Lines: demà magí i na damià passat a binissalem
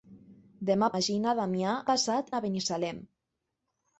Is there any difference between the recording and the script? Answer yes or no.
no